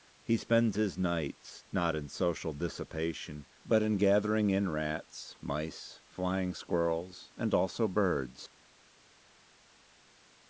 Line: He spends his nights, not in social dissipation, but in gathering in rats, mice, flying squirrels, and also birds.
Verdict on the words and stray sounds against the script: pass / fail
pass